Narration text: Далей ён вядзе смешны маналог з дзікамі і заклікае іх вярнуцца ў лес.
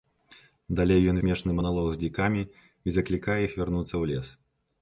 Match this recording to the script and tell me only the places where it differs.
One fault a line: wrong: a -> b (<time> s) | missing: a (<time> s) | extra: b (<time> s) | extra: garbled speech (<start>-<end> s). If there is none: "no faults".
missing: вядзе (1.2 s)